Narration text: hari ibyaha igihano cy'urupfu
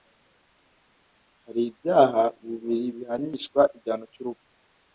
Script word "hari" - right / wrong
right